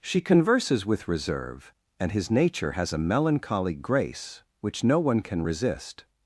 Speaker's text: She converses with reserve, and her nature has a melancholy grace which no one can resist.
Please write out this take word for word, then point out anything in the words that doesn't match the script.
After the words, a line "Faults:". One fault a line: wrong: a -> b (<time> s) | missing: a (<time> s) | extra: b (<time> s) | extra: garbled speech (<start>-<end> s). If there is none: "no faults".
She converses with reserve, and his nature has a melancholy grace which no one can resist.
Faults:
wrong: her -> his (2.1 s)